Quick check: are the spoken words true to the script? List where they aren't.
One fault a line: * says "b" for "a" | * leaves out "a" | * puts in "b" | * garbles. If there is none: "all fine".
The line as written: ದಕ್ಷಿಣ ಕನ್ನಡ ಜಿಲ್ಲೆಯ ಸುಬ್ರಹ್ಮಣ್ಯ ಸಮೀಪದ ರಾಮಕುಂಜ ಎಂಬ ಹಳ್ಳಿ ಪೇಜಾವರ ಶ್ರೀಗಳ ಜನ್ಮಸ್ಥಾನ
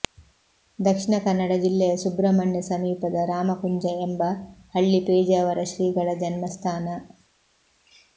all fine